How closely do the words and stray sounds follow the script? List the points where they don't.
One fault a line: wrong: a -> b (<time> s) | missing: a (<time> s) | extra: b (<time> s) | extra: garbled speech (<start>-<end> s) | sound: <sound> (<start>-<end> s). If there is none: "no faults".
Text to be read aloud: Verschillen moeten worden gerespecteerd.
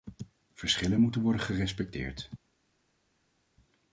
no faults